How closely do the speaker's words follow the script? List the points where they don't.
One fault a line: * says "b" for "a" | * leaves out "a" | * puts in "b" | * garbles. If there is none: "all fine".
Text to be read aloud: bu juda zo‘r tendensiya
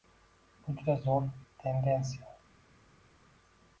all fine